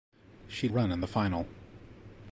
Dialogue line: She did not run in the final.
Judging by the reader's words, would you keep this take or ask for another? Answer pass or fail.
fail